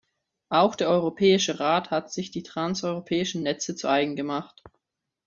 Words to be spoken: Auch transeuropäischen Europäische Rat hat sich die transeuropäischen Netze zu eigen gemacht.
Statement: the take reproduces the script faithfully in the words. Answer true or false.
false